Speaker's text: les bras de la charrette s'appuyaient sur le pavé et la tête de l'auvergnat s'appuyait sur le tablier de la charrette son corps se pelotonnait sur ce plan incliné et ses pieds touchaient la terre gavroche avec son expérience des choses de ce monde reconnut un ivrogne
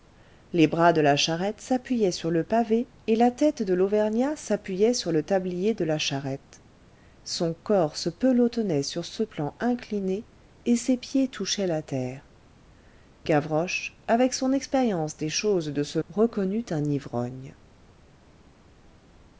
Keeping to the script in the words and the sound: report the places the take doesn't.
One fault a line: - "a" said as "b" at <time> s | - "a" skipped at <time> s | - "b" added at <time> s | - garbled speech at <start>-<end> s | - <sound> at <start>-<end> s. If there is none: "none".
- "monde" skipped at 16.0 s